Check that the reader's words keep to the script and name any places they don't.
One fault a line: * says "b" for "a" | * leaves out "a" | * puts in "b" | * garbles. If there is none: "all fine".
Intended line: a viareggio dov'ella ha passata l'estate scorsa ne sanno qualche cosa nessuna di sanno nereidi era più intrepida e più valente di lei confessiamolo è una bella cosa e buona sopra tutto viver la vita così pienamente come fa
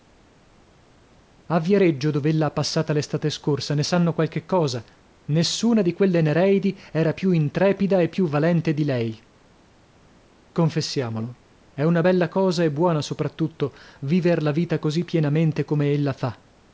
* says "quelle" for "sanno"
* puts in "ella"